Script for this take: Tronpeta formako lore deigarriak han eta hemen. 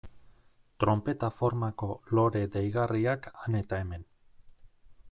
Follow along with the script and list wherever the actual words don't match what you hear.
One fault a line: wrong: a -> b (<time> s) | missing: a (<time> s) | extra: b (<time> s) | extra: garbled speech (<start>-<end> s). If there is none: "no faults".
no faults